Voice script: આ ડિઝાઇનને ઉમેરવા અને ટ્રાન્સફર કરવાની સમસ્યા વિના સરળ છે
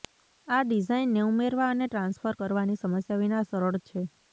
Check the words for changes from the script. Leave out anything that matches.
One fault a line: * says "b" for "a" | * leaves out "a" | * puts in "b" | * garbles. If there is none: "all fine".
all fine